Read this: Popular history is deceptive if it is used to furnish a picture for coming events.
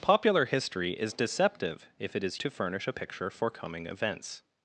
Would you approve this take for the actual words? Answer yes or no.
no